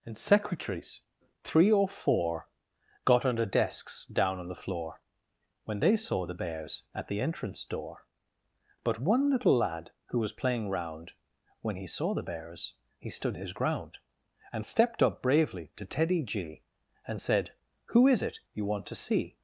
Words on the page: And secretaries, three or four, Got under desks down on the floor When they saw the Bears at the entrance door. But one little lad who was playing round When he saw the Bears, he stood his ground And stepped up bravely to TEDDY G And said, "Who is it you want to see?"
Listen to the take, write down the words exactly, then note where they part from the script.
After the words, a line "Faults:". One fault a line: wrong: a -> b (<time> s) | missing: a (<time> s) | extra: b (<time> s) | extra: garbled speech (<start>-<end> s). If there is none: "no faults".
And secretaries, three or four, Got under desks down on the floor When they saw the Bears at the entrance door. But one little lad who was playing round When he saw the Bears, he stood his ground And stepped up bravely to TEDDY G And said, "Who is it you want to see?"
Faults:
no faults